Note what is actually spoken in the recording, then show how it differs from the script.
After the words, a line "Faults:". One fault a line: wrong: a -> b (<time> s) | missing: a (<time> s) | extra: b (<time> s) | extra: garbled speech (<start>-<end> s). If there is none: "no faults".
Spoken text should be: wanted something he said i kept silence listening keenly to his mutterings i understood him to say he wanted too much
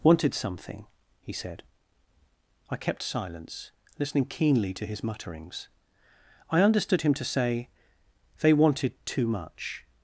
wanted something he said i kept silence listening keenly to his mutterings i understood him to say they wanted too much
Faults:
wrong: he -> they (8.4 s)